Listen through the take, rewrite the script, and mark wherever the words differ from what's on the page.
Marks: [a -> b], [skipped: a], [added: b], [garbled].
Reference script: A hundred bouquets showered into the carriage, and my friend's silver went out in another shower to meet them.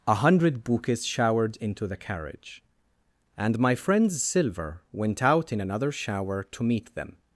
A hundred bouquets showered into the carriage, and my friend's silver went out in another shower to meet them.